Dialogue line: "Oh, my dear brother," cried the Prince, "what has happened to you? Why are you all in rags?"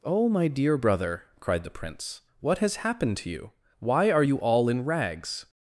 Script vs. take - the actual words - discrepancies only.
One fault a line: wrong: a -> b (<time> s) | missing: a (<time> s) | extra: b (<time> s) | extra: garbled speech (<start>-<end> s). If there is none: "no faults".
no faults